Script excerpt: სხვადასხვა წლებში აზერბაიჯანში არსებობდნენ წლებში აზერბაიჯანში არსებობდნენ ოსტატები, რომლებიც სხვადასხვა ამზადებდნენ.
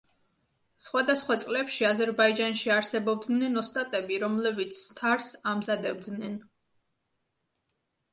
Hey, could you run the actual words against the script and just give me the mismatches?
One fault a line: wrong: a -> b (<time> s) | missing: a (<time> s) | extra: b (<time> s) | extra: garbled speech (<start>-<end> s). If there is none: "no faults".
missing: წლებში აზერბაიჯანში არსებობდნენ (3.6 s)
wrong: სხვადასხვა -> თარს (5.0 s)